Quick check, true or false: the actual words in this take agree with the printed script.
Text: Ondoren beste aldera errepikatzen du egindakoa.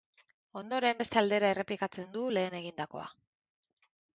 false